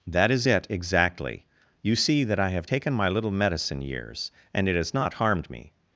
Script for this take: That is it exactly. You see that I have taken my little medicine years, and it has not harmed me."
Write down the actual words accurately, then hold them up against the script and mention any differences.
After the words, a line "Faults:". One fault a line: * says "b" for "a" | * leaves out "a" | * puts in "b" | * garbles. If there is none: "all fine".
That is it exactly. You see that I have taken my little medicine years, and it has not harmed me."
Faults:
all fine